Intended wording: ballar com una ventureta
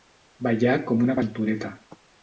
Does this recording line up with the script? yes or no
yes